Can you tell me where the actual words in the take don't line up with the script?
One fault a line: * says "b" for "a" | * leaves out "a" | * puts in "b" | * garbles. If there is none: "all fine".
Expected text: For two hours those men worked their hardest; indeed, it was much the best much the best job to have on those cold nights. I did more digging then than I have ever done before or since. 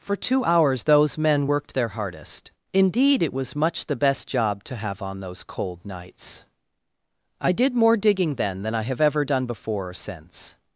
* leaves out "much the best"